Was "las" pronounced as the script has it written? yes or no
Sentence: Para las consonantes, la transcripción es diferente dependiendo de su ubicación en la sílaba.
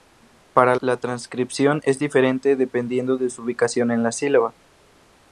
no